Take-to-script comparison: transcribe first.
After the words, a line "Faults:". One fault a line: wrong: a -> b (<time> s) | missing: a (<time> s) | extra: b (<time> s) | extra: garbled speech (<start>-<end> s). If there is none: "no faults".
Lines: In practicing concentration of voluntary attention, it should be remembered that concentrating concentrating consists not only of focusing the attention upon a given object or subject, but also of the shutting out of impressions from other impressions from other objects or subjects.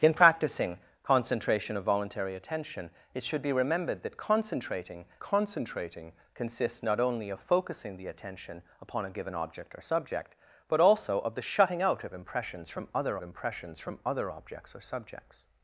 In practicing concentration of voluntary attention, it should be remembered that concentrating concentrating consists not only of focusing the attention upon a given object or subject, but also of the shutting out of impressions from other impressions from other objects or subjects.
Faults:
no faults